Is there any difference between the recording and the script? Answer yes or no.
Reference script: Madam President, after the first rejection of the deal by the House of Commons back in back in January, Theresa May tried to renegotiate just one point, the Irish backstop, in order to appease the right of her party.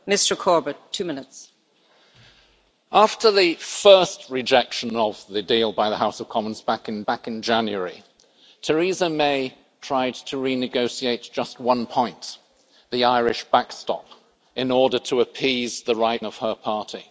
no